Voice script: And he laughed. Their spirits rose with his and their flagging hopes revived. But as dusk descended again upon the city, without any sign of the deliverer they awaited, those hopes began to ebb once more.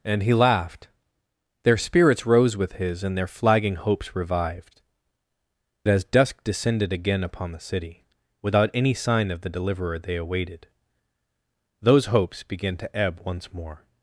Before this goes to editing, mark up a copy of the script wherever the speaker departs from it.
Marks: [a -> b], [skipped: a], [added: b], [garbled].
And he laughed. Their spirits rose with his and their flagging hopes revived. [skipped: But] as dusk descended again upon the city, without any sign of the deliverer they awaited, those hopes began to ebb once more.